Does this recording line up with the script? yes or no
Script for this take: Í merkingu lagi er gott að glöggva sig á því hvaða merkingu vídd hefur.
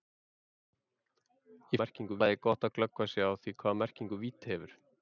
yes